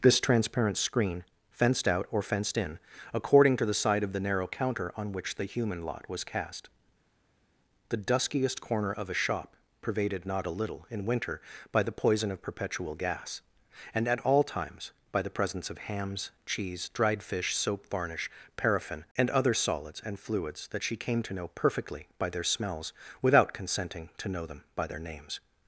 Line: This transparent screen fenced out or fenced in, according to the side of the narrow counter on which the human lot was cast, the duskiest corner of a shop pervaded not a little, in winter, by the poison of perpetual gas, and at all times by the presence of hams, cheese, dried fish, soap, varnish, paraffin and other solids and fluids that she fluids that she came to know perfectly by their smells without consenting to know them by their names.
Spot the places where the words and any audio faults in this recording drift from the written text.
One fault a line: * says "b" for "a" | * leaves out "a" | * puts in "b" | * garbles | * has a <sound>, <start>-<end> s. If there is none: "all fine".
* leaves out "fluids that she"